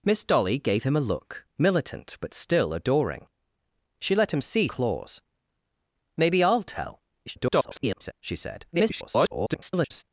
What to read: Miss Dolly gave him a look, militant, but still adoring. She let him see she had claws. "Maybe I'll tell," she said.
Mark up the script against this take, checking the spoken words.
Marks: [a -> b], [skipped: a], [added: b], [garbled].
Miss Dolly gave him a look, militant, but still adoring. She let him see [skipped: she had] claws. "Maybe I'll tell," [garbled] she said. [garbled]